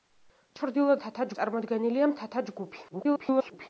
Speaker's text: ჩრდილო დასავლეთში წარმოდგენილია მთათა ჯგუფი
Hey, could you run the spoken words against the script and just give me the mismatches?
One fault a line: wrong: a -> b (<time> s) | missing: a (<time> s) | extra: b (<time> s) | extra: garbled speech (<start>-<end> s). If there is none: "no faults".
wrong: დასავლეთში -> მთათა (1.0 s)
extra: garbled speech (2.9-3.7 s)